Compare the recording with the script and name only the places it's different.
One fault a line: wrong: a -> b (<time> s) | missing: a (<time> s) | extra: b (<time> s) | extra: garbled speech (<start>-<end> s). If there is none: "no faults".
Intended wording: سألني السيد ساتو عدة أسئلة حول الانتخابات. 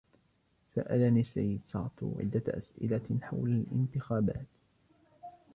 no faults